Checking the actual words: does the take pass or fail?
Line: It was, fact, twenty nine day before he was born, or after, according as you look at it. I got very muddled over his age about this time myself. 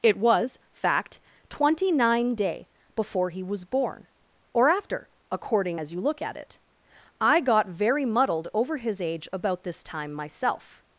pass